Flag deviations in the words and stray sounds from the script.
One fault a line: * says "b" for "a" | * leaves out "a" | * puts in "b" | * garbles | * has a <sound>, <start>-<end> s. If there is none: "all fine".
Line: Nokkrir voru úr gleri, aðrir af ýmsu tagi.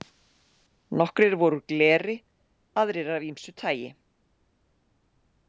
all fine